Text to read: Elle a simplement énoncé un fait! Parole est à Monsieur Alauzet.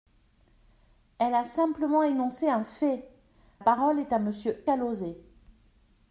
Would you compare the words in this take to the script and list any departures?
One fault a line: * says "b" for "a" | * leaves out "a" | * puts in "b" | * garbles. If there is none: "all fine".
all fine